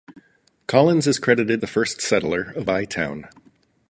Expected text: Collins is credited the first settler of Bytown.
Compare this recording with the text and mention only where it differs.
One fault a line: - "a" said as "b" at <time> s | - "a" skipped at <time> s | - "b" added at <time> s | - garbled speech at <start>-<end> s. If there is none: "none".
none